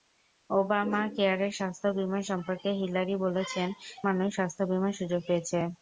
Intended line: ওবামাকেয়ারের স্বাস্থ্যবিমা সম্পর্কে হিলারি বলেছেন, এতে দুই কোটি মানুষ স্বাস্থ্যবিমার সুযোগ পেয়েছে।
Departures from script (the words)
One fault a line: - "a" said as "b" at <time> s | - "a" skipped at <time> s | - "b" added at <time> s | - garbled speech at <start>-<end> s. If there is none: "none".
- "এতে দুই কোটি" skipped at 3.7 s